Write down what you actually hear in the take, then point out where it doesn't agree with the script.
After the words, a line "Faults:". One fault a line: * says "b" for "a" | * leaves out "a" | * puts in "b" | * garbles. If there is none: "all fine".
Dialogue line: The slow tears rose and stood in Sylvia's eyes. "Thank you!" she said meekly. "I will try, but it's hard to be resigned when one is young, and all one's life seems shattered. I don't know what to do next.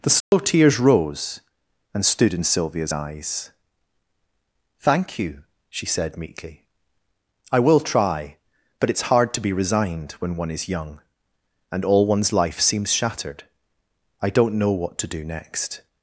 The slow tears rose and stood in Sylvia's eyes. "Thank you!" she said meekly. "I will try, but it's hard to be resigned when one is young, and all one's life seems shattered. I don't know what to do next.
Faults:
all fine